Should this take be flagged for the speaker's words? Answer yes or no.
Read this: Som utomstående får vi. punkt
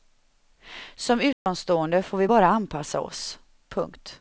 yes